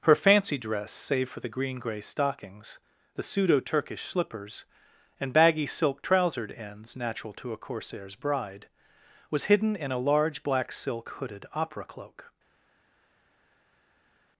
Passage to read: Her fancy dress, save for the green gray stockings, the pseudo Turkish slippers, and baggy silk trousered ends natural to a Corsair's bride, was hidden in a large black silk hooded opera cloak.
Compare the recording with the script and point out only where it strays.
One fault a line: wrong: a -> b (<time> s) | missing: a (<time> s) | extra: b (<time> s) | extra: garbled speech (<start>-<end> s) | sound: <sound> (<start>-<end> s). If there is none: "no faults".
no faults